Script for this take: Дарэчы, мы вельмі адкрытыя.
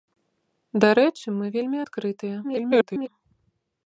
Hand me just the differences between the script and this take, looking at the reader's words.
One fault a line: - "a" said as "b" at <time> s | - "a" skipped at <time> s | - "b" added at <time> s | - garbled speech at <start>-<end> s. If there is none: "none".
- garbled speech at 2.4-3.1 s